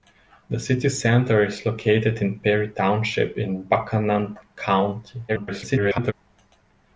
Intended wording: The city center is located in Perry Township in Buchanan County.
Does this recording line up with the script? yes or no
no